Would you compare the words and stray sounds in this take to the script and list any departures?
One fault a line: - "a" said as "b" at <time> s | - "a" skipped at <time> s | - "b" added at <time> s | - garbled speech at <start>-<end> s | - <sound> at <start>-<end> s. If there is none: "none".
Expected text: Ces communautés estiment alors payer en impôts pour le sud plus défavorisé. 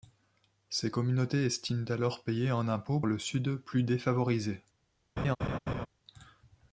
- "pour" skipped at 3.0 s
- laugh at 5.2-5.9 s